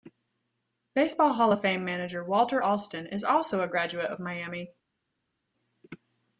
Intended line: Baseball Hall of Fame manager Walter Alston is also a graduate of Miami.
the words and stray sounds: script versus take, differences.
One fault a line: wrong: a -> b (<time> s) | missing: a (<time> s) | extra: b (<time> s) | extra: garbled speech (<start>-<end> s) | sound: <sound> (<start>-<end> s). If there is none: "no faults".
no faults